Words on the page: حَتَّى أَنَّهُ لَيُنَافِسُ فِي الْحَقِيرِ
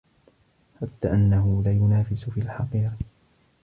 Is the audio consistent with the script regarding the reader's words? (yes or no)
yes